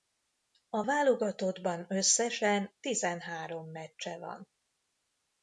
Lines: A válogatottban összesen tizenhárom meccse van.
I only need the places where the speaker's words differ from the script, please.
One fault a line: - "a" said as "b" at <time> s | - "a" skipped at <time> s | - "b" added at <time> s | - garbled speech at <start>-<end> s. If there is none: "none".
none